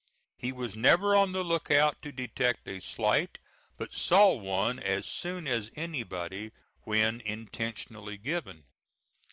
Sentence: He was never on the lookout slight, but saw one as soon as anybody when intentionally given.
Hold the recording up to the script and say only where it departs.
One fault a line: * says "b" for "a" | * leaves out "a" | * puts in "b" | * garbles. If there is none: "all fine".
* puts in "to detect a"